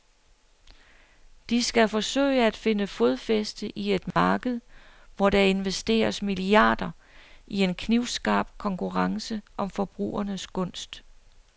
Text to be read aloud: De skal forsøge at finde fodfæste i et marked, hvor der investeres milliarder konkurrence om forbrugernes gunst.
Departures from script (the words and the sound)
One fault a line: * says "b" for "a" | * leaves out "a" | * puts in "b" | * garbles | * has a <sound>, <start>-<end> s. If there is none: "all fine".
* has a dropout, 4.1-4.2 s
* puts in "i en knivskarp"